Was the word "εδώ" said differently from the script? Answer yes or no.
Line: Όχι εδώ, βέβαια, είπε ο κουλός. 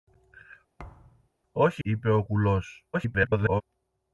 yes